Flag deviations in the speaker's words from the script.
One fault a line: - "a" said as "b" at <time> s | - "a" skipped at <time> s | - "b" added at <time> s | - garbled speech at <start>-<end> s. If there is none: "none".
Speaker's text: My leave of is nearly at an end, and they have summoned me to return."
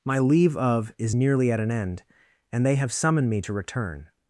none